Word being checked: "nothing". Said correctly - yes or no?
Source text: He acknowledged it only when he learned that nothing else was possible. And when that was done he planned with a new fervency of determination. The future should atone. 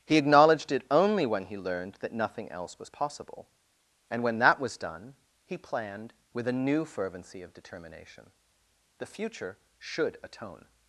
yes